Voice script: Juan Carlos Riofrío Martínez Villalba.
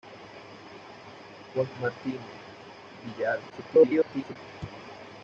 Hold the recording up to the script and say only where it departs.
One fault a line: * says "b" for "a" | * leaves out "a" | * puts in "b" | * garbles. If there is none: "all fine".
* leaves out "Carlos Riofrío"
* garbles